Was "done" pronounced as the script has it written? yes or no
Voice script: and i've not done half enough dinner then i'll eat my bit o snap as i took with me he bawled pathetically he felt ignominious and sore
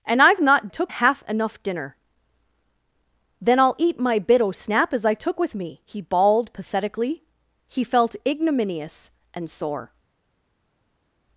no